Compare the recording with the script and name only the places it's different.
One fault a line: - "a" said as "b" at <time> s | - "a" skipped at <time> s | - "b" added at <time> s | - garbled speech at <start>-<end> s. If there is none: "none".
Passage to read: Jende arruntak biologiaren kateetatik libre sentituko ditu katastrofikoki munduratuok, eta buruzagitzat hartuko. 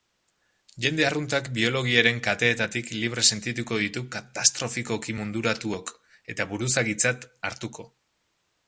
none